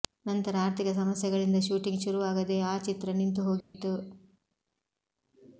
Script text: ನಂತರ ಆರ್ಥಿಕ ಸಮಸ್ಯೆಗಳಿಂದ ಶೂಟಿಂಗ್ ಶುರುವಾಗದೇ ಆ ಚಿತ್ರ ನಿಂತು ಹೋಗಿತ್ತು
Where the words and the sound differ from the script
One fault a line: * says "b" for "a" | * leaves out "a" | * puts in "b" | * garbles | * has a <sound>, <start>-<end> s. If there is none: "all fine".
* has a dropout, 3.6-3.7 s